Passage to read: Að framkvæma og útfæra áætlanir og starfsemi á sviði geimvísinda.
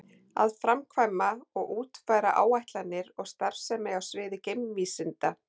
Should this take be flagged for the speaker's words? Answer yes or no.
no